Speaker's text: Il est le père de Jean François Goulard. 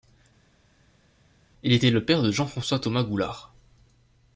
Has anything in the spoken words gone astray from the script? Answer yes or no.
yes